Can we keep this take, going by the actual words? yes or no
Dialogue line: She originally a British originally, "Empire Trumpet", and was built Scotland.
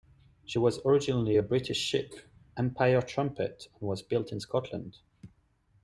no